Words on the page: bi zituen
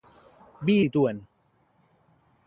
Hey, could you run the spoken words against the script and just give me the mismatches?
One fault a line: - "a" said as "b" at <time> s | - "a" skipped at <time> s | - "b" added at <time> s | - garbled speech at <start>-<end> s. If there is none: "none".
none